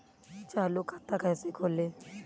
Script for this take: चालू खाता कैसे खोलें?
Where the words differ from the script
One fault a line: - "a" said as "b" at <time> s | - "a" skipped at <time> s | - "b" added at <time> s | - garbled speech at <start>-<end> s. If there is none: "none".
none